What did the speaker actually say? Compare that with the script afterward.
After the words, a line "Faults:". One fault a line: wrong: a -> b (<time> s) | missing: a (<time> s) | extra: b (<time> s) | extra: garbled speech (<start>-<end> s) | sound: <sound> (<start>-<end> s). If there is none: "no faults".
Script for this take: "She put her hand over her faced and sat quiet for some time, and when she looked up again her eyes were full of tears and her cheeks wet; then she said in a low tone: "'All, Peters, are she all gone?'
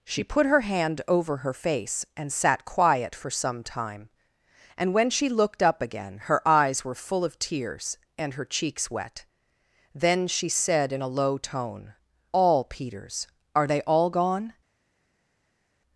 "She put her hand over her face and sat quiet for some time, and when she looked up again her eyes were full of tears and her cheeks wet; then she said in a low tone: "'All, Peters, are they all gone?'
Faults:
wrong: faced -> face (1.5 s)
wrong: she -> they (13.7 s)